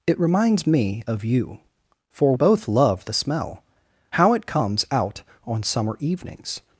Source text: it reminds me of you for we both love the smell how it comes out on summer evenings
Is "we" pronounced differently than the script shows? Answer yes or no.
yes